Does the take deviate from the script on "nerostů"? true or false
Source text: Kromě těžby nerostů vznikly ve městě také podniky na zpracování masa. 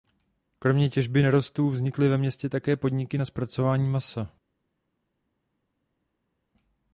false